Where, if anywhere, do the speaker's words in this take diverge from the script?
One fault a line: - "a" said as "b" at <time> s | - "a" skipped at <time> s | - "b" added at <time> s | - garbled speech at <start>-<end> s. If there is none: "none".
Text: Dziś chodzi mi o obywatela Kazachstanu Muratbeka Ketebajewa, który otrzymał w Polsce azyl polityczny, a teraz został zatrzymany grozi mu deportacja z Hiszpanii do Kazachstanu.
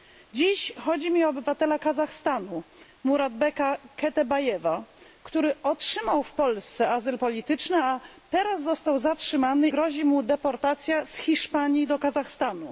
none